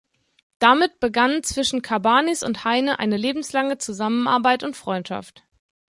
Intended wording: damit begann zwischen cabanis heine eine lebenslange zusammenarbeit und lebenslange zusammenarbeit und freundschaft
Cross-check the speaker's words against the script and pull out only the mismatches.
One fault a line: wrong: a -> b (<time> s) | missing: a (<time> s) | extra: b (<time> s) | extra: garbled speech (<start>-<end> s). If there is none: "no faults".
extra: und (2.4 s)
missing: lebenslange zusammenarbeit und (4.8 s)